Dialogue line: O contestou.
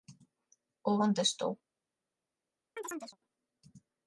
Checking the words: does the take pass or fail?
pass